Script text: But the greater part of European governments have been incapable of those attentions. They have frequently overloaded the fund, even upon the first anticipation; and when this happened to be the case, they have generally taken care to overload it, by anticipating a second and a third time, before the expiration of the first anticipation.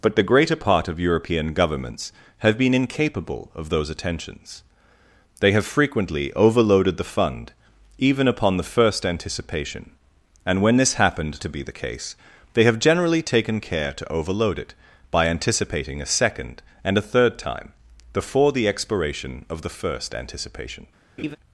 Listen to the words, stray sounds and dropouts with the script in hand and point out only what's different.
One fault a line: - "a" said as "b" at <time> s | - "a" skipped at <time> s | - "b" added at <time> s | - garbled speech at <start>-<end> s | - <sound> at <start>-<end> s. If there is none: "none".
- laugh at 21.2-21.4 s